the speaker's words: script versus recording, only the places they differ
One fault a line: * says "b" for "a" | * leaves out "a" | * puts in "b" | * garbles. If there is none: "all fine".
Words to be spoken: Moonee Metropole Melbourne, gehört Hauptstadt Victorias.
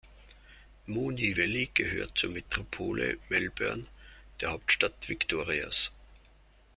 * puts in "Valley gehört zur"
* says "der" for "gehört"